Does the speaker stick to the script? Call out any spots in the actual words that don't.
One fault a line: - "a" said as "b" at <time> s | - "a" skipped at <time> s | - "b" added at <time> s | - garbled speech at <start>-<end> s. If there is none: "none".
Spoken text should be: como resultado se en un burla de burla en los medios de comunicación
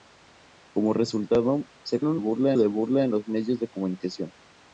none